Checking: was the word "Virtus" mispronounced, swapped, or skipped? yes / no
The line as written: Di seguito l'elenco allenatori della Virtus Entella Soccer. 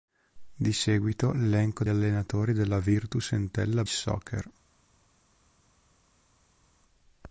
no